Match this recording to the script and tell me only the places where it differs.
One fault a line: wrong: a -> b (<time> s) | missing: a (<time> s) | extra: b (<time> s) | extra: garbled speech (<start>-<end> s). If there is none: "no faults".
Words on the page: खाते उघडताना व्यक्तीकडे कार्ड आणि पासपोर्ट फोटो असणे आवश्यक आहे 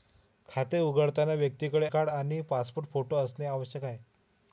no faults